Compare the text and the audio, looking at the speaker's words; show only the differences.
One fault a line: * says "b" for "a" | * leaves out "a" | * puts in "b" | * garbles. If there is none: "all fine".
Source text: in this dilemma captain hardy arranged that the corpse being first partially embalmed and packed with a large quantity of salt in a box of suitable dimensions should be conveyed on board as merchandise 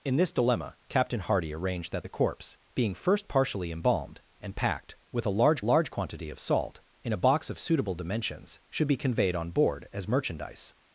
* puts in "large"